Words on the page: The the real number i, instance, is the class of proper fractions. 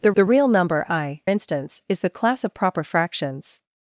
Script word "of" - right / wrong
right